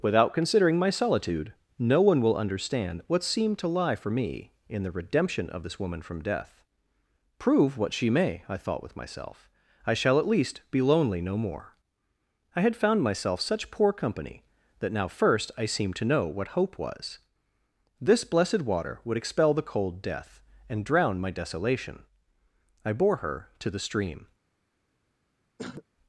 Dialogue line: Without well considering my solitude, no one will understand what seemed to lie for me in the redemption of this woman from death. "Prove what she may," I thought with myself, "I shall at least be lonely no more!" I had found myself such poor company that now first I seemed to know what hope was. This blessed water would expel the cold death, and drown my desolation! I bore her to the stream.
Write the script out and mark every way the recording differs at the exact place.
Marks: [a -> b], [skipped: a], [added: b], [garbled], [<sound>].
Without [skipped: well] considering my solitude, no one will understand what seemed to lie for me in the redemption of this woman from death. "Prove what she may," I thought with myself, "I shall at least be lonely no more!" I had found myself such poor company that now first I seemed to know what hope was. This blessed water would expel the cold death, and drown my desolation! I bore her to the stream. [throat clearing]